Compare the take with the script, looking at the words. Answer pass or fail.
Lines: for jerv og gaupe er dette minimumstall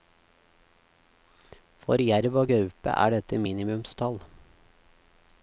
pass